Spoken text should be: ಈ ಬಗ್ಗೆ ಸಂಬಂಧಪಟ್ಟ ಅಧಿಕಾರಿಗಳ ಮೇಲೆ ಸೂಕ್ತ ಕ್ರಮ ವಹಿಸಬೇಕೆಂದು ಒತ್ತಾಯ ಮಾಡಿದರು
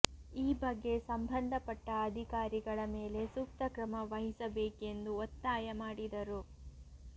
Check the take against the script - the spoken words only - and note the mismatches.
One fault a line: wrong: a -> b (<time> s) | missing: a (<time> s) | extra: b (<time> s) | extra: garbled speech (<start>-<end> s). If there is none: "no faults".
no faults